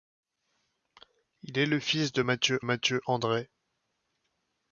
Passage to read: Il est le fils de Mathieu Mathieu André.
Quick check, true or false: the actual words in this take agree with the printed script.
true